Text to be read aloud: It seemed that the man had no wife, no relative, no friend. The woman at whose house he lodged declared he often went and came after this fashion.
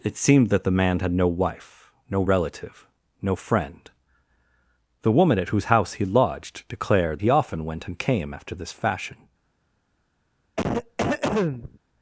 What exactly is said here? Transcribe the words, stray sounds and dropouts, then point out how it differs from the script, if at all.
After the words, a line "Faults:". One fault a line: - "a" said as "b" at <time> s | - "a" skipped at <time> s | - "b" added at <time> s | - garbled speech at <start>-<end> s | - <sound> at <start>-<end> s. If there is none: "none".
It seemed that the man had no wife, no relative, no friend. The woman at whose house he lodged declared he often went and came after this fashion.
Faults:
- cough at 10.6-11.8 s